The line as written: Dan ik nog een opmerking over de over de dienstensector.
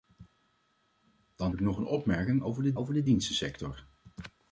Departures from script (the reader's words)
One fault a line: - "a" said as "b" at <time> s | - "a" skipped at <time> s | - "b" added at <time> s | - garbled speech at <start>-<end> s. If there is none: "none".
none